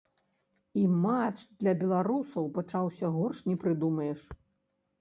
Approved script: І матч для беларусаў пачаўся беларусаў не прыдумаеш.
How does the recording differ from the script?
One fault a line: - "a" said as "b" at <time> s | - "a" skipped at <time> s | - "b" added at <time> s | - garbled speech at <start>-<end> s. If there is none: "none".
- "беларусаў" said as "горш" at 3.2 s